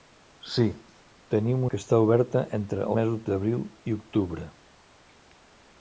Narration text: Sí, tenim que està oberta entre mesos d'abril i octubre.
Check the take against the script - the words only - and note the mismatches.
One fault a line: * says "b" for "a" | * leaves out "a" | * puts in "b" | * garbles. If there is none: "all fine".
all fine